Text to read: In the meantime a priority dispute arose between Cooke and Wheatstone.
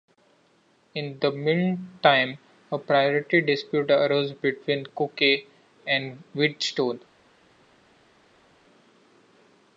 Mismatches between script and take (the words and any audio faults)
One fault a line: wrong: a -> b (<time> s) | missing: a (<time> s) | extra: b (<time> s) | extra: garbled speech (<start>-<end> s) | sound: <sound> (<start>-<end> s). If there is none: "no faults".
no faults